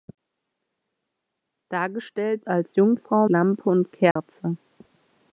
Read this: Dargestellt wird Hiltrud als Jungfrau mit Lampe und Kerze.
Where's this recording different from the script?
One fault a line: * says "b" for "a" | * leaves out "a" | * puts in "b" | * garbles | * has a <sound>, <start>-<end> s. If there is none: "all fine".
* leaves out "wird Hiltrud"
* leaves out "mit"
* has a dropout, 4.1-4.2 s